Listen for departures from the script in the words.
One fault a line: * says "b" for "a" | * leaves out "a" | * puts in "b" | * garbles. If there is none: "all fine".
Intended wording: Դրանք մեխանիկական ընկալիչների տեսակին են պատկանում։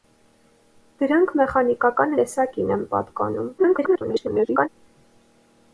* leaves out "ընկալիչների"
* garbles